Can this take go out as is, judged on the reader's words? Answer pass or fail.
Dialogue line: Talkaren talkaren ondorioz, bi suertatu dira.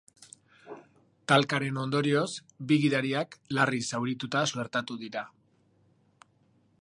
fail